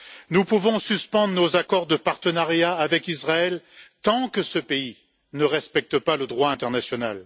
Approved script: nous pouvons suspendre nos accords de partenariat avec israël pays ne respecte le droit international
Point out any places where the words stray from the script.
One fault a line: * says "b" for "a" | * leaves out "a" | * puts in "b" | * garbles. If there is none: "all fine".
* puts in "tant que ce"
* puts in "pas"